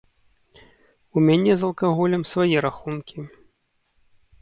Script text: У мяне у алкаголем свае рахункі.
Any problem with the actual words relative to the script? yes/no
yes